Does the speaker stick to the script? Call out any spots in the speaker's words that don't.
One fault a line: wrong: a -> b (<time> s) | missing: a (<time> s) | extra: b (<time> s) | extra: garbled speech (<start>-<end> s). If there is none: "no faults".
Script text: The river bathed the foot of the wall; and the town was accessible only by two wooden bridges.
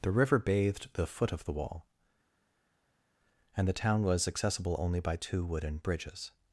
no faults